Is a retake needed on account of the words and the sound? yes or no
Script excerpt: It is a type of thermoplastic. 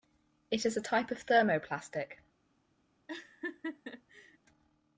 yes